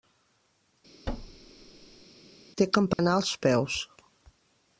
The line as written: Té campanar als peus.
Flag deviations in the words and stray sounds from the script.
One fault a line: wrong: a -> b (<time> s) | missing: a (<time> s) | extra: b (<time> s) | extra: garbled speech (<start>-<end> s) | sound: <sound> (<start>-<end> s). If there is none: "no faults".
sound: thud (1.1-2.0 s)
sound: dropout (2.9-3.0 s)